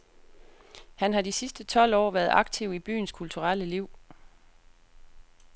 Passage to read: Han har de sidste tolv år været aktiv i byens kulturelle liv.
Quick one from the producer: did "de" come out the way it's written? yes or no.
yes